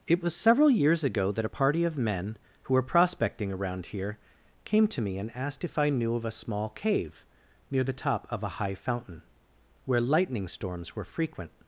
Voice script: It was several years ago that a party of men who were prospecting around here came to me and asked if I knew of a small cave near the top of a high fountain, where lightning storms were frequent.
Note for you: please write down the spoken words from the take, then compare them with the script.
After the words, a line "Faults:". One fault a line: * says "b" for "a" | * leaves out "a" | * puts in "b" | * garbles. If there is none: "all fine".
It was several years ago that a party of men who were prospecting around here came to me and asked if I knew of a small cave near the top of a high fountain, where lightning storms were frequent.
Faults:
all fine